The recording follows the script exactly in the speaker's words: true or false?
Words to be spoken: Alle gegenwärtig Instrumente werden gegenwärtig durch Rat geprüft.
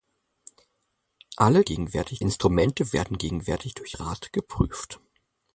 true